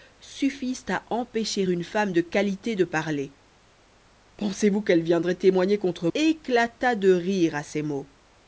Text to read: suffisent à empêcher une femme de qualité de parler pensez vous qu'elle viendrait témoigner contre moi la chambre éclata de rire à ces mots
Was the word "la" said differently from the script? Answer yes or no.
yes